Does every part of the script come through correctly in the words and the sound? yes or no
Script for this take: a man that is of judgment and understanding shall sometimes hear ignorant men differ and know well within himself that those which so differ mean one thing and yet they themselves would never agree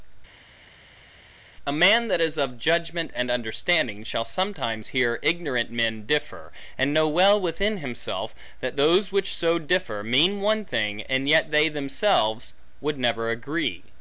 yes